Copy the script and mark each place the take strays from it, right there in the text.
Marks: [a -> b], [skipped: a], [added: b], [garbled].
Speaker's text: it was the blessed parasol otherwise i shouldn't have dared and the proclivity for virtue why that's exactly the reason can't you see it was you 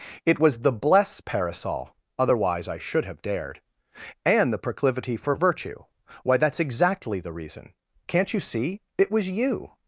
it was the [blessed -> bless] parasol otherwise i [shouldn't -> should] have dared and the proclivity for virtue why that's exactly the reason can't you see it was you